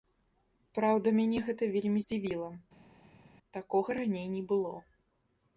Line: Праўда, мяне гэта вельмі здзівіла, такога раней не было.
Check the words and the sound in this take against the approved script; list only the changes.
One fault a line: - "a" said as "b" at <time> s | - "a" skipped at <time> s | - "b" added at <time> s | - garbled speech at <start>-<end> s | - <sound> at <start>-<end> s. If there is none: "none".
none